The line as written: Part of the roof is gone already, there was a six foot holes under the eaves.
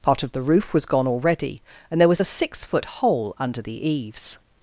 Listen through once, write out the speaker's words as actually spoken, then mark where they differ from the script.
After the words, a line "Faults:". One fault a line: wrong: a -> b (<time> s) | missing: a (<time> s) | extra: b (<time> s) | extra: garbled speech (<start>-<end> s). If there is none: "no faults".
Part of the roof was gone already, and there was a six foot hole under the eaves.
Faults:
wrong: is -> was (0.7 s)
extra: and (1.9 s)
wrong: holes -> hole (2.8 s)